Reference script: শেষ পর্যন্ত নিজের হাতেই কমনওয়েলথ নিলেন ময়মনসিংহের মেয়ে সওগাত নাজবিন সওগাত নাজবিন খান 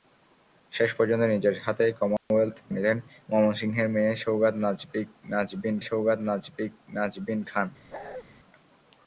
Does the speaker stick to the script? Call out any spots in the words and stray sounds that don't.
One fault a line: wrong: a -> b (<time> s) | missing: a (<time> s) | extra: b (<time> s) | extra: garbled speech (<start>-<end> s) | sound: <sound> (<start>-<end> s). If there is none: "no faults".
sound: dropout (2.2-2.3 s)
sound: bark (7.9-8.2 s)